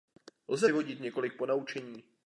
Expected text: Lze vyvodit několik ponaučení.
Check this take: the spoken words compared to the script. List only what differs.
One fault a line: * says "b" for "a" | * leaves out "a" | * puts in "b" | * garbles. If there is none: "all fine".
all fine